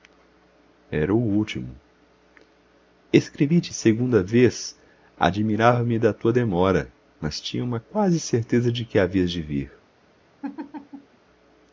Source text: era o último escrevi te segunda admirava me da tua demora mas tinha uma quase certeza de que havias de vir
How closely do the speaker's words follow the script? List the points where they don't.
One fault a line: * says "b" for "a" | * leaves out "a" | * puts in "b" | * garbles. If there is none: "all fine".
* puts in "vez"